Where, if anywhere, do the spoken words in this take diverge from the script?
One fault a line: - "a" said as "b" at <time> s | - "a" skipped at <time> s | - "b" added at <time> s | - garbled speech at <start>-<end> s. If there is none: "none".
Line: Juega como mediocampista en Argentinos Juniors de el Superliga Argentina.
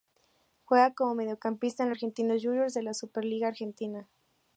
- "el" said as "la" at 2.8 s